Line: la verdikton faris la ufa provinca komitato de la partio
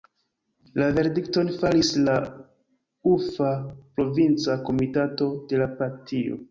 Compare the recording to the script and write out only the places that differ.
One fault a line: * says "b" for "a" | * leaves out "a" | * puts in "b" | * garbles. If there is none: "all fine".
all fine